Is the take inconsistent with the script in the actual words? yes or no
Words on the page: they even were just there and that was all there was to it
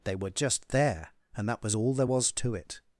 yes